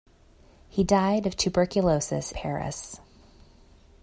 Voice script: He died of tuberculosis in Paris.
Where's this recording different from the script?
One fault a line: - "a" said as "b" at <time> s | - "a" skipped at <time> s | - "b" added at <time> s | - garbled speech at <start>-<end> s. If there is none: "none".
- "in" skipped at 2.3 s